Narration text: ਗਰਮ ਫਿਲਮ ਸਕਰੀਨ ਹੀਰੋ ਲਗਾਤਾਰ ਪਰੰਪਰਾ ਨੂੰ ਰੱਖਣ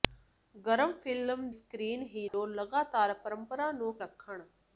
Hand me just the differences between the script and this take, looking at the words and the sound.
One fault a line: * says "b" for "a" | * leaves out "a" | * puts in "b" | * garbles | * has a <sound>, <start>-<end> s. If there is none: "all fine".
* has a dropout, 2.3-2.3 s